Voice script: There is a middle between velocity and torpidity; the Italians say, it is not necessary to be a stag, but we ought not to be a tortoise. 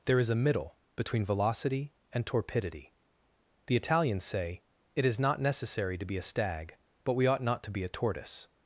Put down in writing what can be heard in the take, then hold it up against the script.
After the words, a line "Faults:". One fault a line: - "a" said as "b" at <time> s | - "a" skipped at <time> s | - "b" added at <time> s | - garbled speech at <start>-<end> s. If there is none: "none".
There is a middle between velocity and torpidity; the Italians say, it is not necessary to be a stag, but we ought not to be a tortoise.
Faults:
none